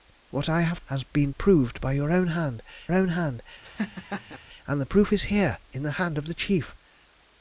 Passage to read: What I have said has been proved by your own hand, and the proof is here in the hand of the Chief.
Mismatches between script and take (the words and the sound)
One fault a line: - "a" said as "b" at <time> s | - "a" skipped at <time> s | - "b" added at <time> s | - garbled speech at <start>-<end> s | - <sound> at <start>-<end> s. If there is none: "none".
- "said" skipped at 0.8 s
- "own hand" added at 2.9 s
- laugh at 3.6-4.4 s